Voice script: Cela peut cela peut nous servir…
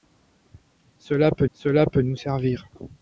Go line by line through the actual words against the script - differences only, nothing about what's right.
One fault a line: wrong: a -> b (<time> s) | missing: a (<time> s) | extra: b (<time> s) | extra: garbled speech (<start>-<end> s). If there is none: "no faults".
no faults